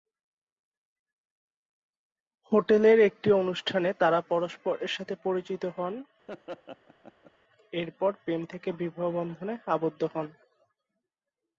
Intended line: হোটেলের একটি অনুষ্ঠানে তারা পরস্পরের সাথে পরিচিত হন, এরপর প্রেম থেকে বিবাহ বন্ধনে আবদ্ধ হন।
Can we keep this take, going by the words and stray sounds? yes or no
no